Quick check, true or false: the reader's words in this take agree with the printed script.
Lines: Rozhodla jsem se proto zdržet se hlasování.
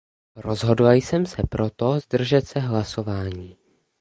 true